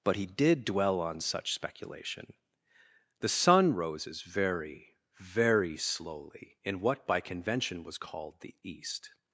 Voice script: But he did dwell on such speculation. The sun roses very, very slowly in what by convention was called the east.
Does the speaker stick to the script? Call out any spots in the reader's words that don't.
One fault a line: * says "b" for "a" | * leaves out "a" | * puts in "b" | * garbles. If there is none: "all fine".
all fine